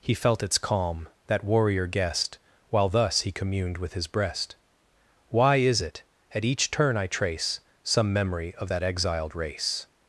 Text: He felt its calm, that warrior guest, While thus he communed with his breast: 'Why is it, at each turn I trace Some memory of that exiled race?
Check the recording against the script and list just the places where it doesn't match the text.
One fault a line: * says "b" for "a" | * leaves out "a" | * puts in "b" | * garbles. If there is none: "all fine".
all fine